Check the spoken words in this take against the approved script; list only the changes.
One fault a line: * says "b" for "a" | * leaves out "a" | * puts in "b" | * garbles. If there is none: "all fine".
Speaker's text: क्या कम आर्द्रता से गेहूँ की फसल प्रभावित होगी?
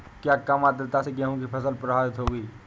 all fine